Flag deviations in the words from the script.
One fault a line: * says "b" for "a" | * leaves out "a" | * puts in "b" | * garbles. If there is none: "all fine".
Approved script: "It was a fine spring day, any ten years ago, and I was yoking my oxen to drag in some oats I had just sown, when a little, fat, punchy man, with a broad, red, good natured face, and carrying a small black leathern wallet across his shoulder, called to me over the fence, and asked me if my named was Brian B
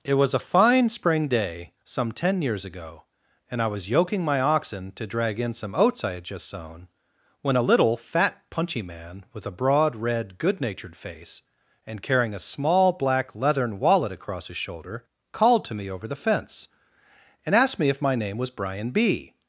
* says "some" for "any"
* says "name" for "named"